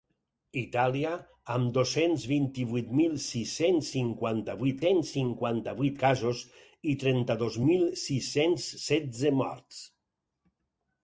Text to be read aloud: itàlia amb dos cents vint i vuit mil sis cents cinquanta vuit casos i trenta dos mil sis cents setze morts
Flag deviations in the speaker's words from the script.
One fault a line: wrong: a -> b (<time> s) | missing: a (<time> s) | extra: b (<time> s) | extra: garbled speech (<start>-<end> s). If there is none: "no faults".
extra: cents cinquanta vuit (4.8 s)